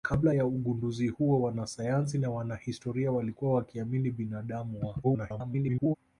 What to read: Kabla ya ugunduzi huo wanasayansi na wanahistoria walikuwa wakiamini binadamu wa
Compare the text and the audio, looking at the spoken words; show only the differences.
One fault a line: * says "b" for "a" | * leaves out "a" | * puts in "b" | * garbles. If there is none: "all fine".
* garbles